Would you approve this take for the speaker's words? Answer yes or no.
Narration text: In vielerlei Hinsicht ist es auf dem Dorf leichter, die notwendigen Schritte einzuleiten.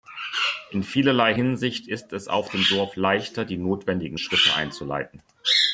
yes